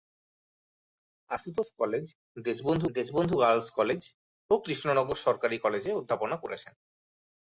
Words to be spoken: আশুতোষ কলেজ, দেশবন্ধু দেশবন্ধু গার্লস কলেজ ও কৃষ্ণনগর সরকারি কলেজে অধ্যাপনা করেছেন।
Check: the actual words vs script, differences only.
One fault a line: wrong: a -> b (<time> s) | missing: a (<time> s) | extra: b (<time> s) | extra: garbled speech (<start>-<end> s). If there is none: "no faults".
no faults